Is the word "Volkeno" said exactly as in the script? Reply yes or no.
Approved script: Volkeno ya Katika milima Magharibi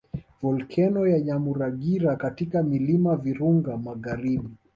yes